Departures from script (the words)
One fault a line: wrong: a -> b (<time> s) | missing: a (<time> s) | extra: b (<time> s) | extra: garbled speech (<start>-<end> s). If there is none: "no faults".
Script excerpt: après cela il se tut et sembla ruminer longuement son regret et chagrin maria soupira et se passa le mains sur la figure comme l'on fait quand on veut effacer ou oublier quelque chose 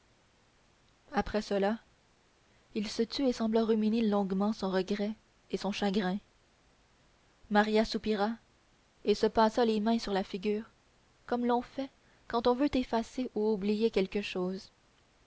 extra: son (5.6 s)
wrong: le -> les (9.7 s)